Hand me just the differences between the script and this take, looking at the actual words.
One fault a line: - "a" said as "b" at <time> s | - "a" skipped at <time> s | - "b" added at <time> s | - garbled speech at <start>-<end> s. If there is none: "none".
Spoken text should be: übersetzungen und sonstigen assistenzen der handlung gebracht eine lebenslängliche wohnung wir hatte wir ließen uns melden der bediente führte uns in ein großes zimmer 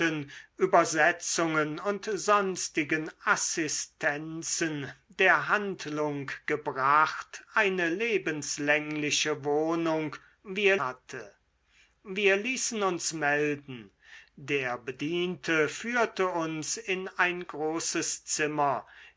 none